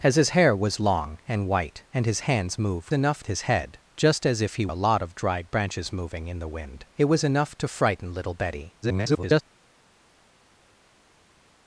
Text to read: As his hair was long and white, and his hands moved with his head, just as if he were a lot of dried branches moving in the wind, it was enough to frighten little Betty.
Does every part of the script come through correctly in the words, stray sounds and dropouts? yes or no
no